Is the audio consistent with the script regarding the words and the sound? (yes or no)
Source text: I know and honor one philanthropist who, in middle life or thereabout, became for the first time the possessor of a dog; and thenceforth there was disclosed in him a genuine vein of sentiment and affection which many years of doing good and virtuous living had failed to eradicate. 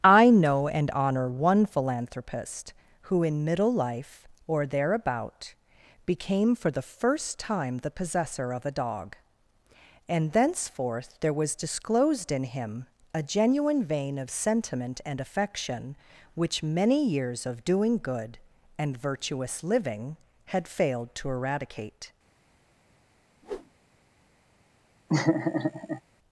no